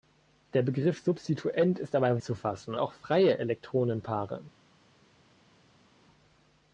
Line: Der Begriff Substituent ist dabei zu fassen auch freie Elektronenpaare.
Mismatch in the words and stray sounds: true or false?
false